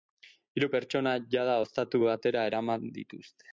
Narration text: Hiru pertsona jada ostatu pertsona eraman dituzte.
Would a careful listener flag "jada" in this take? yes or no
no